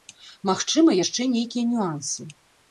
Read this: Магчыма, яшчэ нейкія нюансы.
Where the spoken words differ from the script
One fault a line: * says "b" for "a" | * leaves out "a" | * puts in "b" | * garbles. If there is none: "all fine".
all fine